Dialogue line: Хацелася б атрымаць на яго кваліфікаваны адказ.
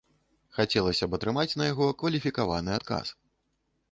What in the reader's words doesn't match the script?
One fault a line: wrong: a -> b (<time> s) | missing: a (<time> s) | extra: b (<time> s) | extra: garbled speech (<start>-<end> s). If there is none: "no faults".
no faults